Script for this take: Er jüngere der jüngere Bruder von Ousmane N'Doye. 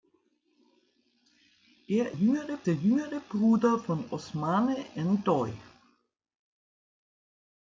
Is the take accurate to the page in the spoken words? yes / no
yes